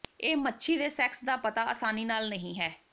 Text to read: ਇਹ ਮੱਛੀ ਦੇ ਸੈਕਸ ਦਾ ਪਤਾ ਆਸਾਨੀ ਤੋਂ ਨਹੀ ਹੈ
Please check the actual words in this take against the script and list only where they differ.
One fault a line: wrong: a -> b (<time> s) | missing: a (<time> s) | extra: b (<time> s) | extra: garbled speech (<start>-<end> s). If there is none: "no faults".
wrong: ਤੋਂ -> ਨਾਲ (2.0 s)